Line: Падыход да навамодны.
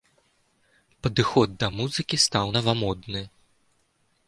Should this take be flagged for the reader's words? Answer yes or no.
yes